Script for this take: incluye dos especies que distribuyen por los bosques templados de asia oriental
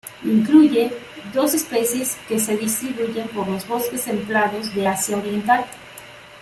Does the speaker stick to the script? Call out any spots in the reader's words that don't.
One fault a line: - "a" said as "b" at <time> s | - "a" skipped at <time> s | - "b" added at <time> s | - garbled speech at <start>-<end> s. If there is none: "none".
- "se" added at 2.4 s